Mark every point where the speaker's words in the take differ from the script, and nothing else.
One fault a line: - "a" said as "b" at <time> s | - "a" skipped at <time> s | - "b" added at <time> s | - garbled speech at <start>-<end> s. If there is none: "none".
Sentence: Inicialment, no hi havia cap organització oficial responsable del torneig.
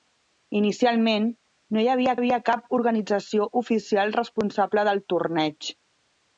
- "havia" added at 2.2 s